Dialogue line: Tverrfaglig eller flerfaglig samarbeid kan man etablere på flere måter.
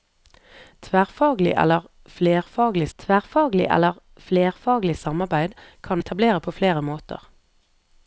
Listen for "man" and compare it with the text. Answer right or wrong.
wrong